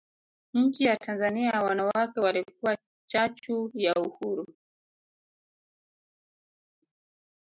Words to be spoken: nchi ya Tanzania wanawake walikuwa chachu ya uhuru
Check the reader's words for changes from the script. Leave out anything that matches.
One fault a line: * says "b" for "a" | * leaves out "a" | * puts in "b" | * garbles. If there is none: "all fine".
all fine